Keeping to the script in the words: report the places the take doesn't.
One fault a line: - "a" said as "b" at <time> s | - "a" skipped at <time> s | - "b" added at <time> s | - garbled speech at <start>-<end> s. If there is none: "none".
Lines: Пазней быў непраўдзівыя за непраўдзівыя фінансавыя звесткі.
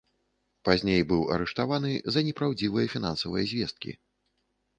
- "непраўдзівыя" said as "арыштаваны" at 1.4 s